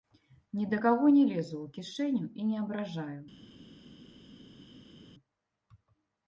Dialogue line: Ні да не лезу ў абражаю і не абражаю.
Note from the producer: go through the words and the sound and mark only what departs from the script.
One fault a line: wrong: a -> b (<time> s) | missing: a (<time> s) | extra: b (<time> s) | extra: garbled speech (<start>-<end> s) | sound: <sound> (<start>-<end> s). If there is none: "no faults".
extra: каго (0.8 s)
wrong: абражаю -> кішэню (1.8 s)